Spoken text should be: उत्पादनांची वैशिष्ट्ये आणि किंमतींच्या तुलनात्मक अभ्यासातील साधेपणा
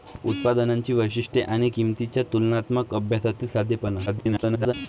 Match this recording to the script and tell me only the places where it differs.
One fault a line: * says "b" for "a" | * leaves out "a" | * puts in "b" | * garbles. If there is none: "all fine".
* garbles